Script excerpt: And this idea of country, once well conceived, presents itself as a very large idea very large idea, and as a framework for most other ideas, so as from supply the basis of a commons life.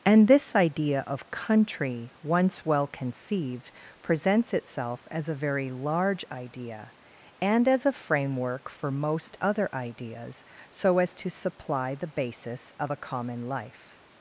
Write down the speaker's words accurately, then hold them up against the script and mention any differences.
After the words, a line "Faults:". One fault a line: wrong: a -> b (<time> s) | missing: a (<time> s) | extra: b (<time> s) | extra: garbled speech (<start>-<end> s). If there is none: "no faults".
And this idea of country, once well conceived, presents itself as a very large idea, and as a framework for most other ideas, so as to supply the basis of a common life.
Faults:
missing: very large idea (6.9 s)
wrong: from -> to (11.2 s)
wrong: commons -> common (13.0 s)